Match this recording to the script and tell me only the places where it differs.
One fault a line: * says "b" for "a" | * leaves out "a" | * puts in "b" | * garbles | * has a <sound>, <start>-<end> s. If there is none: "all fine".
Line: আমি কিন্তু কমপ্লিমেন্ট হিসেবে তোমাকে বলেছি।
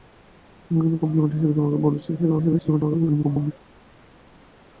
* garbles